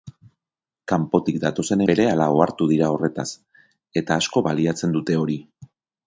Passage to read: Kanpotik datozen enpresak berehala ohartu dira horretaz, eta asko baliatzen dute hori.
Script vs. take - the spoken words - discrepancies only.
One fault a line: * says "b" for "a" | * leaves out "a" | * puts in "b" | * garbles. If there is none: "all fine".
* leaves out "enpresak"